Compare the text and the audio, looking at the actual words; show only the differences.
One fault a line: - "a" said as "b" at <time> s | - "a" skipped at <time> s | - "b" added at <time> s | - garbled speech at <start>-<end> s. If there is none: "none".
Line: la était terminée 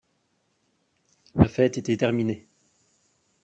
- "fête" added at 1.5 s